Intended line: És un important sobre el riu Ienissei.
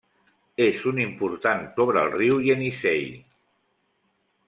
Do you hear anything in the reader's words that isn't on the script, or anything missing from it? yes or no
no